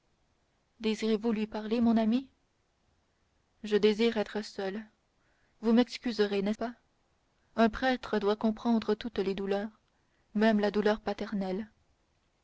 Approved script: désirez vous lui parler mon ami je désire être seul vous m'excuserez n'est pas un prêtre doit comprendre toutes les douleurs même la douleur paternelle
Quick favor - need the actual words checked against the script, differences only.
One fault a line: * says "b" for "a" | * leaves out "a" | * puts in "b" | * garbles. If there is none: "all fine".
all fine